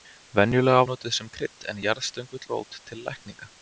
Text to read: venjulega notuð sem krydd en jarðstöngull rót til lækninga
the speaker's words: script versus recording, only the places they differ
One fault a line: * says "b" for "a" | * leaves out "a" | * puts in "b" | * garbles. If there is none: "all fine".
all fine